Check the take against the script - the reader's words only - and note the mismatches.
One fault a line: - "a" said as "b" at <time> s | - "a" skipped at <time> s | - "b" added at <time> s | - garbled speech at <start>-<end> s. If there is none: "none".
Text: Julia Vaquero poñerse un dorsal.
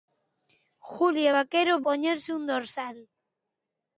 none